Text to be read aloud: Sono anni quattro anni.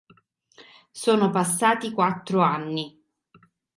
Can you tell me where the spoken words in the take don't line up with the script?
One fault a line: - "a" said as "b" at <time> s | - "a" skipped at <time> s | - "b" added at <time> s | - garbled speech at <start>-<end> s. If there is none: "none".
- "anni" said as "passati" at 1.3 s